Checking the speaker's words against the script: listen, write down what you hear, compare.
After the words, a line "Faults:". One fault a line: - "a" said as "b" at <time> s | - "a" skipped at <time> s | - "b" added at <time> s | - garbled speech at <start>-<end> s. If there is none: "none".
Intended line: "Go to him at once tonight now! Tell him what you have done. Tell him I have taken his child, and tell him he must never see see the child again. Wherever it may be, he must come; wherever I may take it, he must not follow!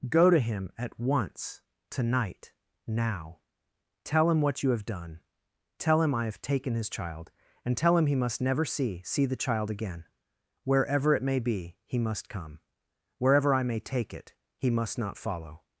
"Go to him at once tonight now! Tell him what you have done. Tell him I have taken his child, and tell him he must never see see the child again. Wherever it may be, he must come; wherever I may take it, he must not follow!
Faults:
none